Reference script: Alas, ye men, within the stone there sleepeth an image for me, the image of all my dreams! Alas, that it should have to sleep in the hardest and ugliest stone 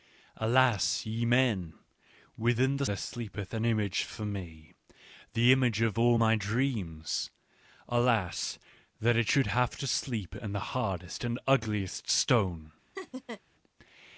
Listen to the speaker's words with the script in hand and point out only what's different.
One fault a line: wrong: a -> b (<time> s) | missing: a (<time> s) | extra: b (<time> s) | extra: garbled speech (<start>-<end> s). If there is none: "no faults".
missing: stone (2.9 s)